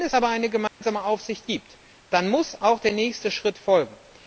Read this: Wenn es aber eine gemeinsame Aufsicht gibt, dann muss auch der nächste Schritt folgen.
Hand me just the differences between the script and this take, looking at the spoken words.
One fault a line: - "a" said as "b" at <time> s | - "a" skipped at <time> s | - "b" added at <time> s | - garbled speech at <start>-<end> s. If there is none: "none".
none